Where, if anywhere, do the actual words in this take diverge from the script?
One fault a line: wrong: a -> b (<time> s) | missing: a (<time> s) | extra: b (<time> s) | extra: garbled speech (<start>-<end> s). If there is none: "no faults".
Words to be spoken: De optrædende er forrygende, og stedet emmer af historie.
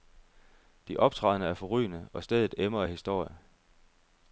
no faults